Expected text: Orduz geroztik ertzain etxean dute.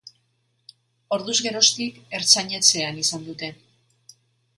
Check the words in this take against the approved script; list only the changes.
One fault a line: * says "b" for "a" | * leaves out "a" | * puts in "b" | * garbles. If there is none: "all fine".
* puts in "izan"